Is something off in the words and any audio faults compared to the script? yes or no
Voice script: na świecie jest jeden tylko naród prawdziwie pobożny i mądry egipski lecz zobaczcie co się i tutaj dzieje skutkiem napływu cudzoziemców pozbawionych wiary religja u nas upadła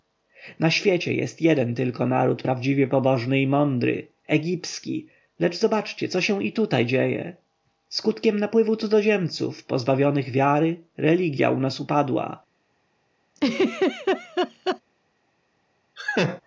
yes